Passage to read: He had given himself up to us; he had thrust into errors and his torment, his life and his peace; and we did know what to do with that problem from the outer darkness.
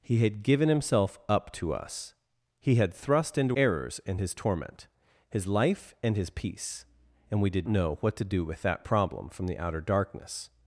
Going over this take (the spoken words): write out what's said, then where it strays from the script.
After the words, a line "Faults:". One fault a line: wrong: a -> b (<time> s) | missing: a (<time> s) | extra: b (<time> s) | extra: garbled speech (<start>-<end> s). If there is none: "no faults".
He had given himself up to us; he had thrust into errors and his torment, his life and his peace; and we did know what to do with that problem from the outer darkness.
Faults:
no faults